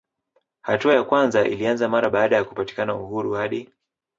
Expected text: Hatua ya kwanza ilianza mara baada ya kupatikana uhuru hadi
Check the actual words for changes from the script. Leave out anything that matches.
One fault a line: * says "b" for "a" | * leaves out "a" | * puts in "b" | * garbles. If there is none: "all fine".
all fine